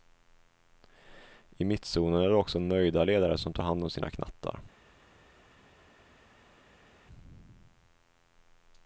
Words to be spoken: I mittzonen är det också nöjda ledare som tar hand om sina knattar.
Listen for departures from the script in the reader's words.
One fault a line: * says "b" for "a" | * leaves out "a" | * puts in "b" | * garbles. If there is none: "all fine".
all fine